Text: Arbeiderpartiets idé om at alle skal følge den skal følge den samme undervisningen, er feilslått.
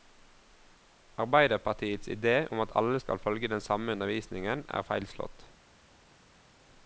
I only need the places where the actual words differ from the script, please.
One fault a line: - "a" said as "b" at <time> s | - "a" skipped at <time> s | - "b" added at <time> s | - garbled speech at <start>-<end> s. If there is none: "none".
- "skal følge den" skipped at 3.6 s